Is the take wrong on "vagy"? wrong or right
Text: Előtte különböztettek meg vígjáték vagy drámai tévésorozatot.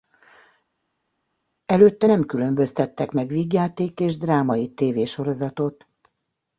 wrong